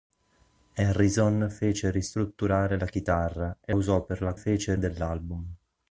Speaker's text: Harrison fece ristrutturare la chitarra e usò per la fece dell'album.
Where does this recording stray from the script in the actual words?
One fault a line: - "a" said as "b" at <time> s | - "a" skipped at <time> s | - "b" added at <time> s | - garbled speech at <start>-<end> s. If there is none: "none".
none